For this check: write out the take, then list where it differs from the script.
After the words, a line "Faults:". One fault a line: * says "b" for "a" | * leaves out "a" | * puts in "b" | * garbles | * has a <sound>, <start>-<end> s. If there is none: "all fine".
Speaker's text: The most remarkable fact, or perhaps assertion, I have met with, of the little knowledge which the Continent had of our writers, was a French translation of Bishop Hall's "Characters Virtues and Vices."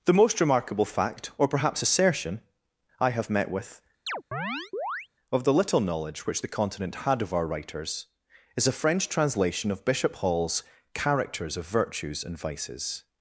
The most remarkable fact, or perhaps assertion, I have met with, of the little knowledge which the Continent had of our writers, is a French translation of Bishop Hall's "Characters of Virtues and Vices."
Faults:
* has a chirp, 4.1-5.1 s
* says "is" for "was"
* puts in "of"